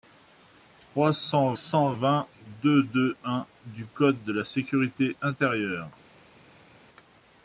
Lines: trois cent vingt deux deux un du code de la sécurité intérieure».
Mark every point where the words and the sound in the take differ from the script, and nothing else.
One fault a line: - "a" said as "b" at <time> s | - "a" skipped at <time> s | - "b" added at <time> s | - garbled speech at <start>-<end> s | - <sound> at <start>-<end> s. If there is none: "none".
- "cent" added at 1.5 s